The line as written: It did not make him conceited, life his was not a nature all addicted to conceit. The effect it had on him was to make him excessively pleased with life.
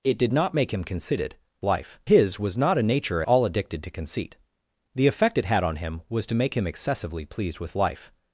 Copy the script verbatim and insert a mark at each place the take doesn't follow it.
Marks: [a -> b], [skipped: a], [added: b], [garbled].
It did not make him conceited, life his was not a nature all addicted to conceit. The effect it had on him was to make him excessively pleased with life.